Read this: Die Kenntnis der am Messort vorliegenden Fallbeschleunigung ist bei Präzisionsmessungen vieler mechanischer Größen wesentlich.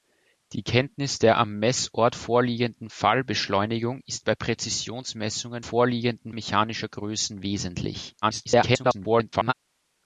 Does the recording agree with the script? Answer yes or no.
no